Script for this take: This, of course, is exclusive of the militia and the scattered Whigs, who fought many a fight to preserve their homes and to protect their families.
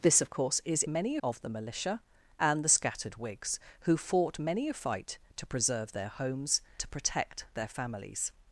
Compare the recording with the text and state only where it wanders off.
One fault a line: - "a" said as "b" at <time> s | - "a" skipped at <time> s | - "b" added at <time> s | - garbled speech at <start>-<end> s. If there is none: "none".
- "exclusive" said as "many" at 0.9 s
- "and" skipped at 6.6 s